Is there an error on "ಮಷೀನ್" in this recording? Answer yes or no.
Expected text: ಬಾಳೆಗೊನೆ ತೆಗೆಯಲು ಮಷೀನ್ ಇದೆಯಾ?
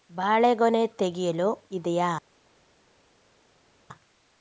yes